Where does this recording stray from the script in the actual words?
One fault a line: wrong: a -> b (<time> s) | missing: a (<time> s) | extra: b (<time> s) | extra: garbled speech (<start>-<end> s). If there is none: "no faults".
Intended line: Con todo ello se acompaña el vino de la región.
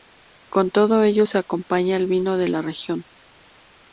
no faults